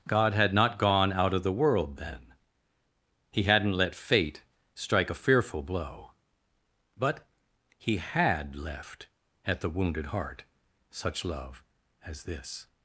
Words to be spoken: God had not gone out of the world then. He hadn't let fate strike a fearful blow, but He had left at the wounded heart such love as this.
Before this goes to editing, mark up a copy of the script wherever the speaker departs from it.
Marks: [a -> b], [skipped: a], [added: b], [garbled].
God had not gone out of the world then. He hadn't let fate strike a fearful blow, but He had left at the wounded heart such love as this.